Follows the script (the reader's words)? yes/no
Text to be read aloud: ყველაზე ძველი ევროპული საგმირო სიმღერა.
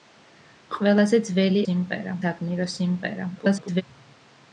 no